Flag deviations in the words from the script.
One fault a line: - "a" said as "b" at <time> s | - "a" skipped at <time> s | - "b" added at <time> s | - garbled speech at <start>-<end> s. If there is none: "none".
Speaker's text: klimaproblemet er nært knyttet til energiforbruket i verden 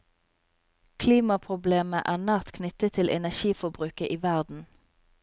none